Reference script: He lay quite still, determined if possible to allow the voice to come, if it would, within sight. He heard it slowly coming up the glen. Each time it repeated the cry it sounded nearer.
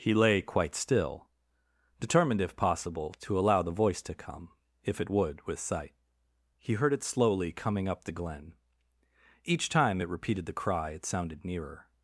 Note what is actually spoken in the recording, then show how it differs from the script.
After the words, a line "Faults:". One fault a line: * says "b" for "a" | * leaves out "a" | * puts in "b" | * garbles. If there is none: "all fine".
He lay quite still, determined if possible to allow the voice to come, if it would, with sight. He heard it slowly coming up the glen. Each time it repeated the cry it sounded nearer.
Faults:
* says "with" for "within"